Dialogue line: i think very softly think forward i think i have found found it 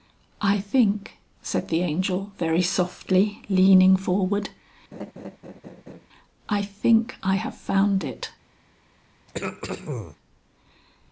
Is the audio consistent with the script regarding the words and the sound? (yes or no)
no